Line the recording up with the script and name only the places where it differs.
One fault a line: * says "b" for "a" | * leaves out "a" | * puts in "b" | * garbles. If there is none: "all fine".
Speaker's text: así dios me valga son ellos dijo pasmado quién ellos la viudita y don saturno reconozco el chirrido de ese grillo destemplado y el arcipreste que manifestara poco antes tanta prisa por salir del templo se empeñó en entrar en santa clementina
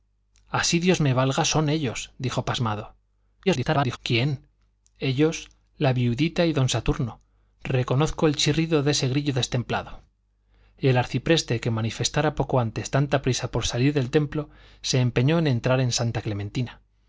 * garbles